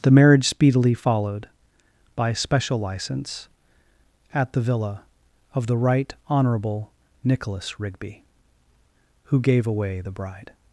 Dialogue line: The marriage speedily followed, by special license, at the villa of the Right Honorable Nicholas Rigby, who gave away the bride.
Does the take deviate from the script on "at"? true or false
false